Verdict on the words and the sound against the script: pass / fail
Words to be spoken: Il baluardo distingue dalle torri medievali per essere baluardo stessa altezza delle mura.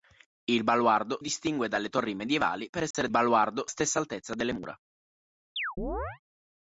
fail